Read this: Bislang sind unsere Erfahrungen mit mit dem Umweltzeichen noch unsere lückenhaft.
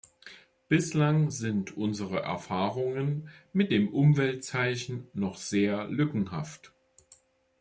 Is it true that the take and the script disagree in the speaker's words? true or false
true